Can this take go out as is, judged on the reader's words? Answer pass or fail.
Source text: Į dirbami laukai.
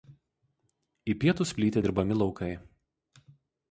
fail